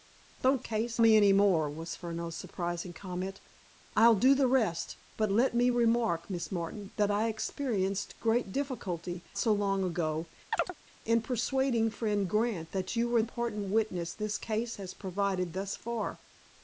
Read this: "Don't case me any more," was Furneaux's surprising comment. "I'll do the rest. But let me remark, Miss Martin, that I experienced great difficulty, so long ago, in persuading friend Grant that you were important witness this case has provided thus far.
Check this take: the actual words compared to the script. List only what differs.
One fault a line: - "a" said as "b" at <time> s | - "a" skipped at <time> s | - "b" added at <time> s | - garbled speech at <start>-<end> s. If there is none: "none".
none